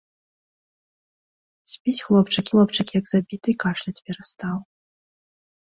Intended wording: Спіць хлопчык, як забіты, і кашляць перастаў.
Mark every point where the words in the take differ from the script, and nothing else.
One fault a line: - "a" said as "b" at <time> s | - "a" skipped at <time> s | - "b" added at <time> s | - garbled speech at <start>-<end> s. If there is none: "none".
- "хлопчык" added at 2.5 s